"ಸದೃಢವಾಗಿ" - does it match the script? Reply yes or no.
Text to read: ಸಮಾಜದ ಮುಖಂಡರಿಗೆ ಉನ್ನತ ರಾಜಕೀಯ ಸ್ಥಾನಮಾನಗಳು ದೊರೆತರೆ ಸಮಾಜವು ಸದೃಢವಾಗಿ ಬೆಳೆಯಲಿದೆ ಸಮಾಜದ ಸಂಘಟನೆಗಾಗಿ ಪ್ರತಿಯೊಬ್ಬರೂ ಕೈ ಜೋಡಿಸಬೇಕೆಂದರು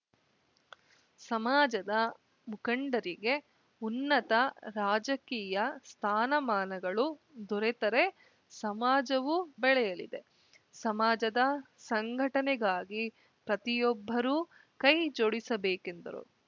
no